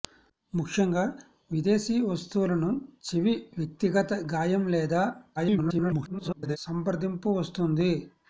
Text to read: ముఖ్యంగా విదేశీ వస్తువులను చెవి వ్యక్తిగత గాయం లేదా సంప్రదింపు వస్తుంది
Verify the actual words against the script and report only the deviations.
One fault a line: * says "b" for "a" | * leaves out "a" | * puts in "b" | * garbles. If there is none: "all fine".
* garbles